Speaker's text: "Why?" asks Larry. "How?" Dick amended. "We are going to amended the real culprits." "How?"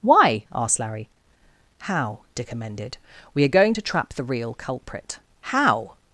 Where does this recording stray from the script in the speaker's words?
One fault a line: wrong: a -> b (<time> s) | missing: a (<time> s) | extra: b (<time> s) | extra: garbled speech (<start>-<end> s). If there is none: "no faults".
wrong: asks -> asked (0.5 s)
wrong: amended -> trap (3.8 s)
wrong: culprits -> culprit (4.5 s)